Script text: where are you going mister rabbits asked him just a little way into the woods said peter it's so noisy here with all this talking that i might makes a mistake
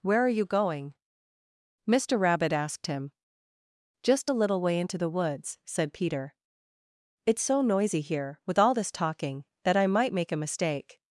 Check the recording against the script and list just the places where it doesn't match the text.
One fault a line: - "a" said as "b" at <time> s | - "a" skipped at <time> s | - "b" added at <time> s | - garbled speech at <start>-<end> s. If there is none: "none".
- "rabbits" said as "rabbit" at 2.2 s
- "makes" said as "make" at 10.1 s